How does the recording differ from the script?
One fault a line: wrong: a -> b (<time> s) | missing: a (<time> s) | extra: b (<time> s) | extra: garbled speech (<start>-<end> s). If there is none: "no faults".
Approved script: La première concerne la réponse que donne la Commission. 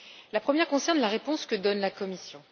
no faults